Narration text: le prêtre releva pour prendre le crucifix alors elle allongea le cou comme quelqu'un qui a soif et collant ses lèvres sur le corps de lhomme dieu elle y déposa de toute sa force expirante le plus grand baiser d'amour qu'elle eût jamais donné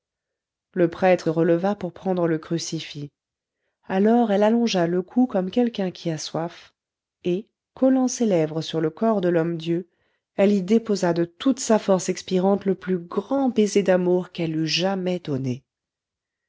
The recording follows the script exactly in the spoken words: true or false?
true